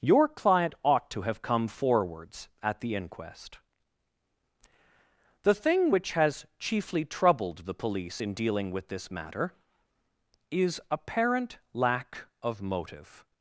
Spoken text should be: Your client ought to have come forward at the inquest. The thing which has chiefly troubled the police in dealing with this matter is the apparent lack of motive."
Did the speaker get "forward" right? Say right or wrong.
wrong